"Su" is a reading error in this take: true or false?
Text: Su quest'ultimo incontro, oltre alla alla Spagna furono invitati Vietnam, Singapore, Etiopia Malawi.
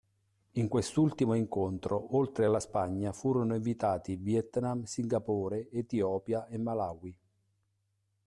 true